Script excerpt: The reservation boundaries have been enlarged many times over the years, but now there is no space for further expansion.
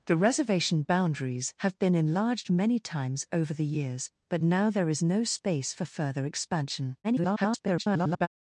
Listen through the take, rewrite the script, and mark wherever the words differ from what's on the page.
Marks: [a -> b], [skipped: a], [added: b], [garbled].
The reservation boundaries have been enlarged many times over the years, but now there is no space for further expansion. [garbled]